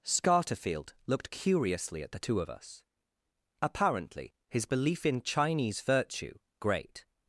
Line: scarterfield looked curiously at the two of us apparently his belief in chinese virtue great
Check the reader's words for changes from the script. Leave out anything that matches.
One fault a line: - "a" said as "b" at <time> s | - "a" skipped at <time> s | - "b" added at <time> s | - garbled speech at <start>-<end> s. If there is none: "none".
none